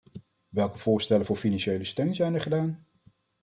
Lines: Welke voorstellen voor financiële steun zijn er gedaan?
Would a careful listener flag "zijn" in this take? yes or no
no